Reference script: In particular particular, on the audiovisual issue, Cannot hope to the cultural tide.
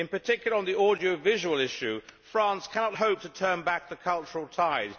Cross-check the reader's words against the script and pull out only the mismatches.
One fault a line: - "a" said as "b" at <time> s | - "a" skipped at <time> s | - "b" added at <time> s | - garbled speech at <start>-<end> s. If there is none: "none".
- "particular" skipped at 0.6 s
- "France" added at 2.3 s
- "turn back" added at 3.3 s